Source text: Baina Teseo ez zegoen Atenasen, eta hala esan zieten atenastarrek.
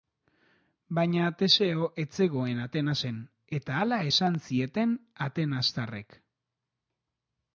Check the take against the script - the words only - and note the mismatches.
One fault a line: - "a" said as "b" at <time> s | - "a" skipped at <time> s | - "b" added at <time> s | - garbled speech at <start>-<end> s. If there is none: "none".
none